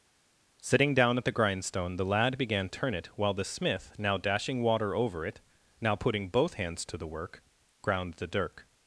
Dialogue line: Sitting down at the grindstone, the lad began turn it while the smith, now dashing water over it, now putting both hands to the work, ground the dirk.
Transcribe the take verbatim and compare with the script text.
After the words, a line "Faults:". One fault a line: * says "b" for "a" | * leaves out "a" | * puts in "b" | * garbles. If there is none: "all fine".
Sitting down at the grindstone, the lad began turn it while the smith, now dashing water over it, now putting both hands to the work, ground the dirk.
Faults:
all fine